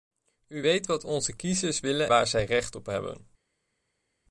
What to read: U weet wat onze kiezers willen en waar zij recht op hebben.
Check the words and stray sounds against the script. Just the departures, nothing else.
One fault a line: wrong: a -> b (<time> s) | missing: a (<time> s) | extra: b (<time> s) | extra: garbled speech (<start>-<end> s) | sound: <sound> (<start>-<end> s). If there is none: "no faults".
missing: en (2.1 s)